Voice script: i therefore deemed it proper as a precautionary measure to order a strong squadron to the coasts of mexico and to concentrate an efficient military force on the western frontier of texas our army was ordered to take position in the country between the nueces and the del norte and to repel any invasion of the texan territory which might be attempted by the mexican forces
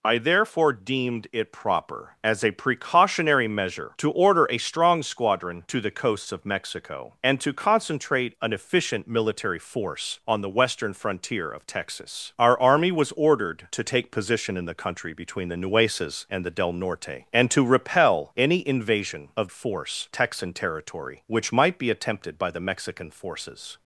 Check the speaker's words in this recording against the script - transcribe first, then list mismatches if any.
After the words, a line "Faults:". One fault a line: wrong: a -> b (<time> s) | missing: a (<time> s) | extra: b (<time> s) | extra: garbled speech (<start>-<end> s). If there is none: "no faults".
i therefore deemed it proper as a precautionary measure to order a strong squadron to the coasts of mexico and to concentrate an efficient military force on the western frontier of texas our army was ordered to take position in the country between the nueces and the del norte and to repel any invasion of force texan territory which might be attempted by the mexican forces
Faults:
wrong: the -> force (19.5 s)